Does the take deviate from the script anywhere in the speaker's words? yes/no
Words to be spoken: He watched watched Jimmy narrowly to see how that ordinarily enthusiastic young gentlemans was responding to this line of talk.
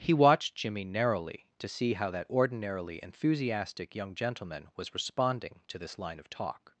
yes